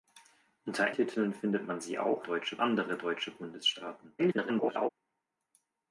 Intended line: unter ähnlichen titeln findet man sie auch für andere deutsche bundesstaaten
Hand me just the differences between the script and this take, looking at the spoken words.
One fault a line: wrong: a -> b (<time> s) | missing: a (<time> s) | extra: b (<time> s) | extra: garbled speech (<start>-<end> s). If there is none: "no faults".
missing: ähnlichen (0.9 s)
wrong: für -> deutsche (2.2 s)
extra: garbled speech (4.2-4.9 s)